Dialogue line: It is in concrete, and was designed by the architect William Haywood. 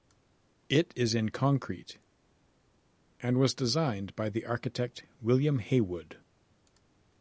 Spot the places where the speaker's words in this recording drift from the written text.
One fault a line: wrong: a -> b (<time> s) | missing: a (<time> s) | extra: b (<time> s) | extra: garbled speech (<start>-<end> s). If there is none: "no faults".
no faults